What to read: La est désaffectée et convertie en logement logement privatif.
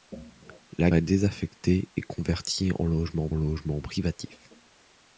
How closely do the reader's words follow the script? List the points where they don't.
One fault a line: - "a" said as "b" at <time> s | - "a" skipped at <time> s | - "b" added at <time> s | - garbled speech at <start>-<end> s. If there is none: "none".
none